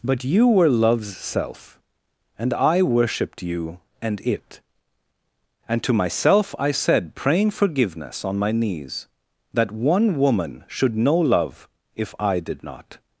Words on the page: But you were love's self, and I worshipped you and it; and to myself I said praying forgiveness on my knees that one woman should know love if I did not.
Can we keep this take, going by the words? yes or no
yes